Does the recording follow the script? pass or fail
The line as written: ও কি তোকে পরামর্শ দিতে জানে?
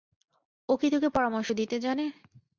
pass